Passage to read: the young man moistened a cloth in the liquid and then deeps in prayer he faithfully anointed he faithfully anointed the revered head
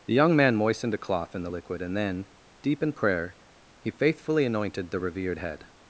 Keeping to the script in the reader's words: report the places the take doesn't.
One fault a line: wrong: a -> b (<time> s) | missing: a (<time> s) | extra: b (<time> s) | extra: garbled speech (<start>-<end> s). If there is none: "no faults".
wrong: deeps -> deep (2.6 s)
missing: he faithfully anointed (4.9 s)